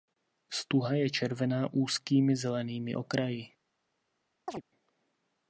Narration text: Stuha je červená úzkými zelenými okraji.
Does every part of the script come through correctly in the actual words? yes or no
yes